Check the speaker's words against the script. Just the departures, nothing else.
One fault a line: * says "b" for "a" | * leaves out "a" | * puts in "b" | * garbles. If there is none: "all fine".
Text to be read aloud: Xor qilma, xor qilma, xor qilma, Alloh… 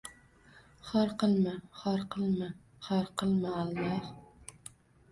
all fine